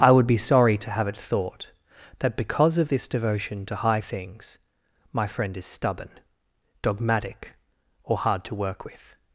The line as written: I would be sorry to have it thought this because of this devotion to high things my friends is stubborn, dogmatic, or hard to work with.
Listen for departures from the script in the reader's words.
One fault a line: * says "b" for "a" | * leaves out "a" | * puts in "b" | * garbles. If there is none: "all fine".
* says "that" for "this"
* says "friend" for "friends"